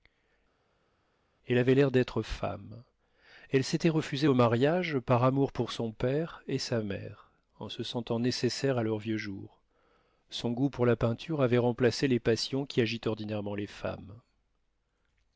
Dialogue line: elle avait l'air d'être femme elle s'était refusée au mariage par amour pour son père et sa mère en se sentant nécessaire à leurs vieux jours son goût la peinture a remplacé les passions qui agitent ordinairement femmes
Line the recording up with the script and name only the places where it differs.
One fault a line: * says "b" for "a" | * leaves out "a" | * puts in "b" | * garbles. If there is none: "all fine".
* puts in "pour"
* says "avait" for "a"
* puts in "les"